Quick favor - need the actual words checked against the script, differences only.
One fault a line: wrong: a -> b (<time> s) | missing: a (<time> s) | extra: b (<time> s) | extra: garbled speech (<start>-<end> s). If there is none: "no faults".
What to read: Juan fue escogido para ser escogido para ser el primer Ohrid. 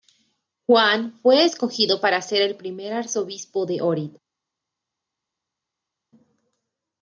wrong: escogido para ser el primer -> el primer arzobispo de (2.4 s)